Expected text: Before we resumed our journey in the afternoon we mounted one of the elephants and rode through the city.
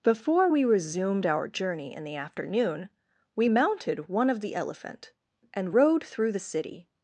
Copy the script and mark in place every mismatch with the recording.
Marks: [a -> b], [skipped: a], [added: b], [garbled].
Before we resumed our journey in the afternoon we mounted one of the [elephants -> elephant] and rode through the city.